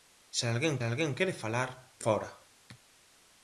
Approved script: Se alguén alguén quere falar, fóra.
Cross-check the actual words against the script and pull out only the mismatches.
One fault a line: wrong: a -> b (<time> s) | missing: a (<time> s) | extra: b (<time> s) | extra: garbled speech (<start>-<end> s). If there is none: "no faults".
no faults